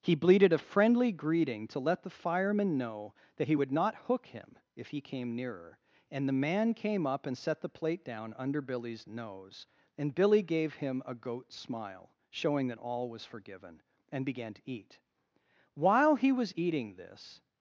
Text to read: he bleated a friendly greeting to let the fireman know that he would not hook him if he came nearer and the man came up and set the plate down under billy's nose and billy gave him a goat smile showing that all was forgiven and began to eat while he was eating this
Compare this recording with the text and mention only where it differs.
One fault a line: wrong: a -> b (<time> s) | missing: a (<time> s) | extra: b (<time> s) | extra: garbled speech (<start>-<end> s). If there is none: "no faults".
no faults